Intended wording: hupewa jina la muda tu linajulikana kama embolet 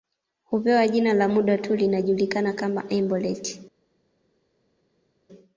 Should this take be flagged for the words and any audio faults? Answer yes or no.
no